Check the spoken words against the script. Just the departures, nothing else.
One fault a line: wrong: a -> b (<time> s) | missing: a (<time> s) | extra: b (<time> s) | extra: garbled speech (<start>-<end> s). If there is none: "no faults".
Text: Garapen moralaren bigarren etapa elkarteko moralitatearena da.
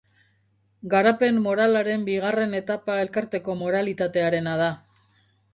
no faults